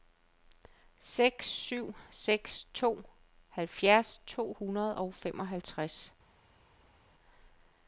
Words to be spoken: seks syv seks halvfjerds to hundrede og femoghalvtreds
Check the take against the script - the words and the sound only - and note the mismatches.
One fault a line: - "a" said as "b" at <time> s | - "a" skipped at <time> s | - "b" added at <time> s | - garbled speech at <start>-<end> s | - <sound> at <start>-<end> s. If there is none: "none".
- "to" added at 2.7 s